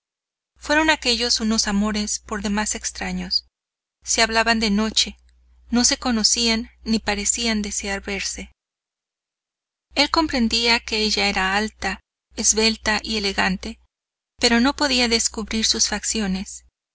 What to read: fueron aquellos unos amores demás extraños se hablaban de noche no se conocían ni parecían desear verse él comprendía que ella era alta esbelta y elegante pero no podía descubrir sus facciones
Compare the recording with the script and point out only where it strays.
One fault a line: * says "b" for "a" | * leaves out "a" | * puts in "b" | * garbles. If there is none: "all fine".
* puts in "por"